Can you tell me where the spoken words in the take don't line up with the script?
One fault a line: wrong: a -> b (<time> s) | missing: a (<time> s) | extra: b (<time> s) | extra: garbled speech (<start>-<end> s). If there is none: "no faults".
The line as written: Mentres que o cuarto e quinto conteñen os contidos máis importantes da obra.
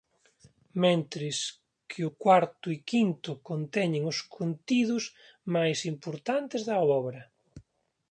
no faults